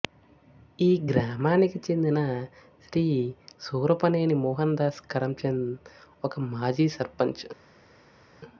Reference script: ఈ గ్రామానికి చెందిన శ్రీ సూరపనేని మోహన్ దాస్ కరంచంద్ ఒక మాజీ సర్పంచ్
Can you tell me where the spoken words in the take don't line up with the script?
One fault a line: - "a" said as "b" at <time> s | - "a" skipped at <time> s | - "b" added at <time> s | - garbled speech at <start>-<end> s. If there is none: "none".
none